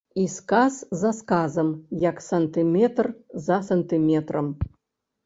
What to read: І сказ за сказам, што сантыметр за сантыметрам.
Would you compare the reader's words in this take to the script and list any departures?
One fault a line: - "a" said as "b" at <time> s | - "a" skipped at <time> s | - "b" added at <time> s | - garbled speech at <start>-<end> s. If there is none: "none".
- "што" said as "як" at 2.0 s